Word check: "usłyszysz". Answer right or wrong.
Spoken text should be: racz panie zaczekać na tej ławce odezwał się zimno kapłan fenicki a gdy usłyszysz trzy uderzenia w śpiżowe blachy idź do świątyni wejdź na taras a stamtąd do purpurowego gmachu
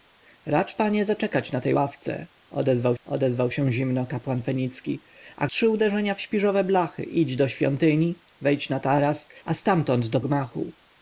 wrong